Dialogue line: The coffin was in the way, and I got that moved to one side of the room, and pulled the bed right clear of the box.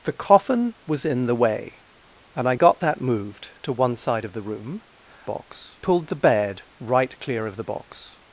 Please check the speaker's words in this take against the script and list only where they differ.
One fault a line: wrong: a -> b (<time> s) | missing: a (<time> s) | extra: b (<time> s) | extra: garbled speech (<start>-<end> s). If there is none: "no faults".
wrong: and -> box (5.2 s)